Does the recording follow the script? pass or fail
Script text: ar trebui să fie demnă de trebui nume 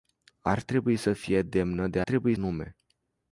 pass